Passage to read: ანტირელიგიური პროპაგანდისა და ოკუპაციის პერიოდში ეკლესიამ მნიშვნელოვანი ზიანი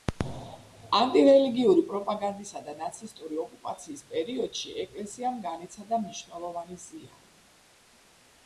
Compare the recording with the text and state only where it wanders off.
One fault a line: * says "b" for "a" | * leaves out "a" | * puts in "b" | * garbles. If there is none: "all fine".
* puts in "ნაცისტური"
* puts in "განიცადა"